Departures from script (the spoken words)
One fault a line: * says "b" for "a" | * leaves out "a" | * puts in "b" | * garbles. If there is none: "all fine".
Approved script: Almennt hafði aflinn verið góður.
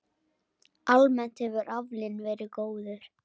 * says "hefur" for "hafði"